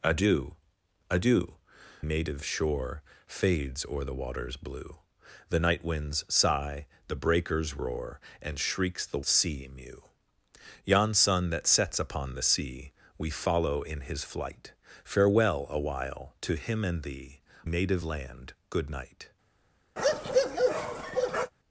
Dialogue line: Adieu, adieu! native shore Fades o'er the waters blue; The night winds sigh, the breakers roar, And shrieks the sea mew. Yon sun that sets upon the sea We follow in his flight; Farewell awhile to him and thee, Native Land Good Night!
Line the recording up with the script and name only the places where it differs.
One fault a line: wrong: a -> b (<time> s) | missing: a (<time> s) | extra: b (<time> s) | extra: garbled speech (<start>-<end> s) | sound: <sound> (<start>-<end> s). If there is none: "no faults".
sound: bark (20.0-21.5 s)